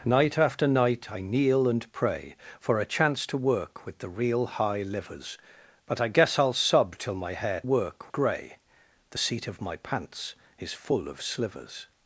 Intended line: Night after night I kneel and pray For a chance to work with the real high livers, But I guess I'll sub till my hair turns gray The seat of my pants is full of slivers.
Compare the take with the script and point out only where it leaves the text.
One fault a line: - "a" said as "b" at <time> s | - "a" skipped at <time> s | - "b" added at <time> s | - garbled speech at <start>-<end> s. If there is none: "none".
- "turns" said as "work" at 7.6 s